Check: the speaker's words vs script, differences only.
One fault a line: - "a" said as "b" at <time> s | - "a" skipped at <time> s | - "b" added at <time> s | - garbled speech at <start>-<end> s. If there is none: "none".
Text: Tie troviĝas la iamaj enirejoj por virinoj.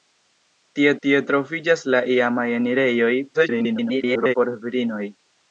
- "tie" added at 1.1 s
- garbled speech at 3.3-4.3 s